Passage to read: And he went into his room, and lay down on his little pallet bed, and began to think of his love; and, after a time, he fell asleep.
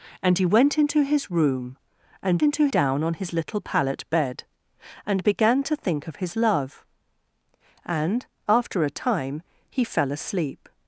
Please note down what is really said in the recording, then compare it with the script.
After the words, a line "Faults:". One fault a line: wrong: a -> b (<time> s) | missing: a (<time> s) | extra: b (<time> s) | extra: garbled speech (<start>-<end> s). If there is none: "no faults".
And he went into his room, and into down on his little pallet bed, and began to think of his love; and, after a time, he fell asleep.
Faults:
wrong: lay -> into (2.4 s)